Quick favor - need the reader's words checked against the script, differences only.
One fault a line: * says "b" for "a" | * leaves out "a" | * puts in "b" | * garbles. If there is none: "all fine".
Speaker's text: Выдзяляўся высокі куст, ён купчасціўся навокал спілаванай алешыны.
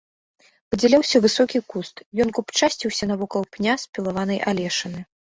* puts in "пня"